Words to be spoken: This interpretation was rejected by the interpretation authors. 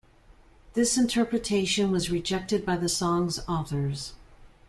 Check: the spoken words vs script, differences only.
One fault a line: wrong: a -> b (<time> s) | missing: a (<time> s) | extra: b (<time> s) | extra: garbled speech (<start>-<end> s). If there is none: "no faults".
wrong: interpretation -> song's (2.9 s)